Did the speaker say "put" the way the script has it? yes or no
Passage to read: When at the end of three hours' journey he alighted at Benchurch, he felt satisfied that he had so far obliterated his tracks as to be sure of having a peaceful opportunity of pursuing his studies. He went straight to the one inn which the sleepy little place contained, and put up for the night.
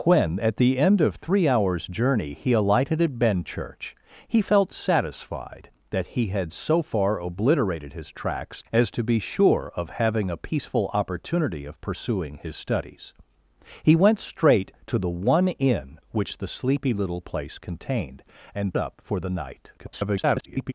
no